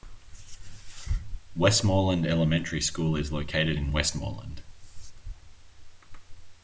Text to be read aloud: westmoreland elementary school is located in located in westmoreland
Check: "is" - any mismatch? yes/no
no